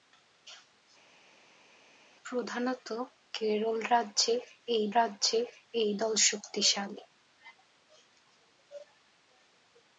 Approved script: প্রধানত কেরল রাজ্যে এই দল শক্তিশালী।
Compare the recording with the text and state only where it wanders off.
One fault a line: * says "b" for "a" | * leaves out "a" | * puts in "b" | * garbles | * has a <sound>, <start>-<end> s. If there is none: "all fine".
* puts in "রাজ্যে এই"